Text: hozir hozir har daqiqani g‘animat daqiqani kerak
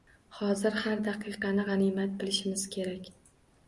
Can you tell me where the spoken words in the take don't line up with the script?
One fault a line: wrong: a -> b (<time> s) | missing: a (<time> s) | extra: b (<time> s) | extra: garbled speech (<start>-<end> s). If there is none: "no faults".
missing: hozir (0.8 s)
wrong: daqiqani -> bilishimiz (2.2 s)